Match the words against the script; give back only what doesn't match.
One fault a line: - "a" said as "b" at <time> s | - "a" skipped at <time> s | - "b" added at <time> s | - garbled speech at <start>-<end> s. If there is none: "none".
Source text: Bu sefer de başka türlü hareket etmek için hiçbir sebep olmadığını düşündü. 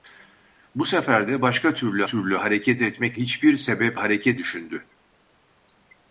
- "türlü" added at 2.0 s
- "için" skipped at 3.2 s
- "olmadığını" said as "hareket" at 3.9 s